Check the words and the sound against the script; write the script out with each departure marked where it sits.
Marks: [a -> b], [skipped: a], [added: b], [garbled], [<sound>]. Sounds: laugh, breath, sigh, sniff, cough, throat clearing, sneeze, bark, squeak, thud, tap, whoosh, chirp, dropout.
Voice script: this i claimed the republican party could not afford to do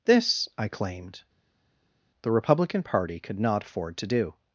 this i claimed the republican party could not afford to do